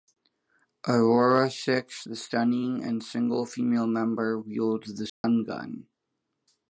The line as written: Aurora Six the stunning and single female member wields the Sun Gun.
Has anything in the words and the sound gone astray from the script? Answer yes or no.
yes